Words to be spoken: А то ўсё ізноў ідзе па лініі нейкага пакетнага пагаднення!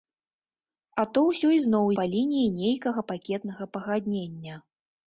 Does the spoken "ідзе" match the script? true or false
false